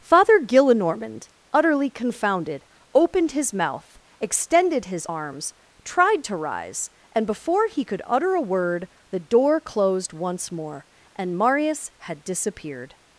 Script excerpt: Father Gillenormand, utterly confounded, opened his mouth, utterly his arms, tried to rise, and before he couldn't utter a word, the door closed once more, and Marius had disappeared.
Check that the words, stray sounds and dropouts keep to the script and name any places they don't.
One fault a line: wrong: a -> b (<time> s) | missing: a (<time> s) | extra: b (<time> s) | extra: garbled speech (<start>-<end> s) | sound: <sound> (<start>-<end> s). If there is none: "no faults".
wrong: utterly -> extended (4.2 s)
wrong: couldn't -> could (7.8 s)